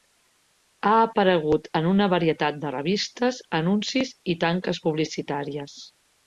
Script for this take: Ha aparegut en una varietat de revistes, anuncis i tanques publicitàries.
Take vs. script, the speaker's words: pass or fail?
pass